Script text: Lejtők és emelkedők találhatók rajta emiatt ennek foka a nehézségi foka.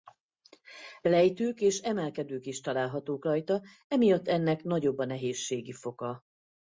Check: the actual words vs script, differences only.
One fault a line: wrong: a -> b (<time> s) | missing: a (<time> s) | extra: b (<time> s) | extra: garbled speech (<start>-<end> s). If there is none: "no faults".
extra: is (2.5 s)
wrong: foka -> nagyobb (4.6 s)